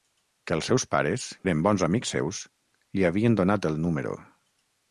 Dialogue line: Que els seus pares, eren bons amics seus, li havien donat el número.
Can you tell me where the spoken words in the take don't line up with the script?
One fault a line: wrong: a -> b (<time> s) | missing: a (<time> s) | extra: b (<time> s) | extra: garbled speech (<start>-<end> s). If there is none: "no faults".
no faults